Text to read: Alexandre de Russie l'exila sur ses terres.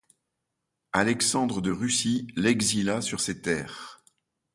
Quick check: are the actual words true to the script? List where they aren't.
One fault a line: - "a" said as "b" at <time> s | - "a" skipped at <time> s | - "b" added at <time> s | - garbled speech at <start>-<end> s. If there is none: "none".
none